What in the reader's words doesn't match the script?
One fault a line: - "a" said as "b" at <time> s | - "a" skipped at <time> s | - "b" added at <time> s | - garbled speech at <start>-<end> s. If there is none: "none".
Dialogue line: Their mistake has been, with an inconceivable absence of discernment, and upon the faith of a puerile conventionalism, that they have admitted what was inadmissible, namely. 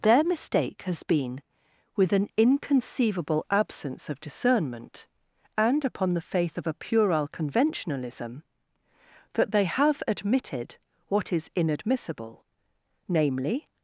- "was" said as "is" at 11.3 s